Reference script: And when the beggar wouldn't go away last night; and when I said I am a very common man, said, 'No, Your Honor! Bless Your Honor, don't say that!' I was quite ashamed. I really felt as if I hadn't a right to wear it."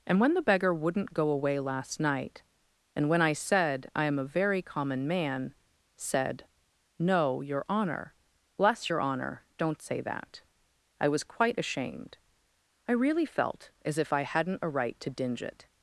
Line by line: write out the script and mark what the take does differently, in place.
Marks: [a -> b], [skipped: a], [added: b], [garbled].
And when the beggar wouldn't go away last night; and when I said I am a very common man, said, 'No, Your Honor! Bless Your Honor, don't say that!' I was quite ashamed. I really felt as if I hadn't a right to [wear -> dinge] it."